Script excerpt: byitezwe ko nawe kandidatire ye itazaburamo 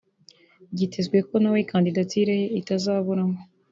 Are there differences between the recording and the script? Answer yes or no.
no